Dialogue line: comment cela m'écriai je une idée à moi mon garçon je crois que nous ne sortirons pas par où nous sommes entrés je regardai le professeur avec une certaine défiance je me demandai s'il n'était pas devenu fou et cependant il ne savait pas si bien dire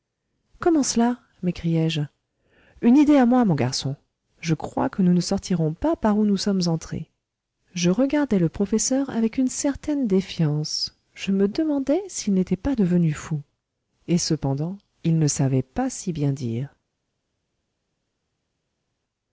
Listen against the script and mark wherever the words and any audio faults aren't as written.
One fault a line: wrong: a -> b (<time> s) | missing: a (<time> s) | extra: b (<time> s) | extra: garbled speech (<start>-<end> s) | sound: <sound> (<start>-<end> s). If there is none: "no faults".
no faults